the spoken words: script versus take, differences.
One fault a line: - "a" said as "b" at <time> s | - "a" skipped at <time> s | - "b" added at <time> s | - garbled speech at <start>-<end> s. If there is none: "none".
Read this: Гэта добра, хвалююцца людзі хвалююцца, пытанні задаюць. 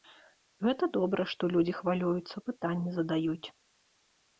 - "хвалююцца" said as "што" at 1.4 s